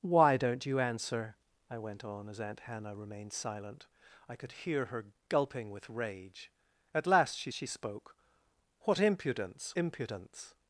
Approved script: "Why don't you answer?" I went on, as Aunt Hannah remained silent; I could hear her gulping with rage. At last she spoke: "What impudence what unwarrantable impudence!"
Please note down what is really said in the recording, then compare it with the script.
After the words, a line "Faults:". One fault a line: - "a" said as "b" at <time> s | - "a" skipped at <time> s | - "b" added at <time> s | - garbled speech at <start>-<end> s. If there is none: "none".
"Why don't you answer?" I went on, as Aunt Hannah remained silent; I could hear her gulping with rage. At last she she spoke: "What impudence impudence!"
Faults:
- "she" added at 7.5 s
- "what unwarrantable" skipped at 9.7 s